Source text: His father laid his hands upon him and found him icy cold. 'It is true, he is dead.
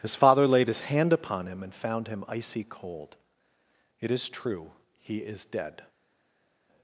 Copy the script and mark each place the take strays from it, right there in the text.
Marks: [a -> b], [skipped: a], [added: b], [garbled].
His father laid his [hands -> hand] upon him and found him icy cold. 'It is true, he is dead.